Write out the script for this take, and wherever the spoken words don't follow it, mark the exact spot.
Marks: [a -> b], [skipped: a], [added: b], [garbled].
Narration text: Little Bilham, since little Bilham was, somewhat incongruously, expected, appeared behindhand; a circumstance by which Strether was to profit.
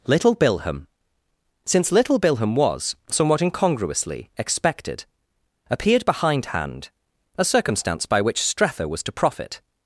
Little Bilham, since little Bilham was, somewhat incongruously, expected, appeared behindhand; a circumstance by which Strether was to profit.